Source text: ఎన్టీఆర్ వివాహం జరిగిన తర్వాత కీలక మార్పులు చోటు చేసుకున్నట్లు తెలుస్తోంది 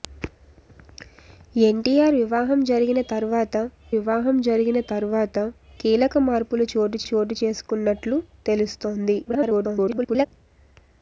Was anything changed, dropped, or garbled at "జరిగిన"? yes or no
no